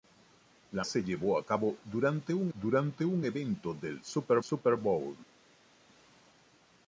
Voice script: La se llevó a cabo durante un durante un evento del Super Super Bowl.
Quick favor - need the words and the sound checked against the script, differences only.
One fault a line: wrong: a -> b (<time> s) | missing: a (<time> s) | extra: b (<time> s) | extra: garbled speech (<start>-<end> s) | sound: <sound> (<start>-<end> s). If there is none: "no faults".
no faults